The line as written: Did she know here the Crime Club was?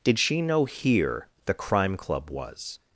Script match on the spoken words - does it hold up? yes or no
yes